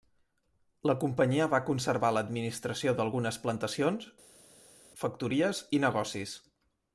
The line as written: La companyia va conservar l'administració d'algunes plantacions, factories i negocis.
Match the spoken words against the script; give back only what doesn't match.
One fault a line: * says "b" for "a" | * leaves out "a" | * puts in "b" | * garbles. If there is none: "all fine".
all fine